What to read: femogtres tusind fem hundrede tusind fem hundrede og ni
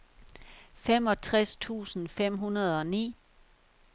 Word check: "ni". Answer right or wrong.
right